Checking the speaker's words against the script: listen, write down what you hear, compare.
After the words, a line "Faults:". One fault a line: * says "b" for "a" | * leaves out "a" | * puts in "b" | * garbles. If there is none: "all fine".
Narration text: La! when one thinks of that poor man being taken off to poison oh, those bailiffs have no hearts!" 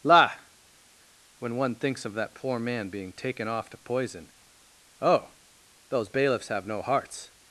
La! when one thinks of that poor man being taken off to poison oh, those bailiffs have no hearts!"
Faults:
all fine